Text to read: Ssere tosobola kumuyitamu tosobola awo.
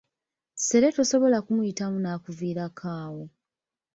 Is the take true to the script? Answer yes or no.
no